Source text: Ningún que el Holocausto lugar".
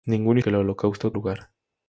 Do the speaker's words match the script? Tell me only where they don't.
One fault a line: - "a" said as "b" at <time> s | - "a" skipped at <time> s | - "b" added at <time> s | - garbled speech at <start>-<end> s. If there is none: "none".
none